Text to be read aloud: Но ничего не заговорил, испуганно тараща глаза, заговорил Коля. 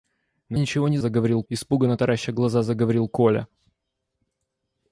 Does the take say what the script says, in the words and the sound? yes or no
yes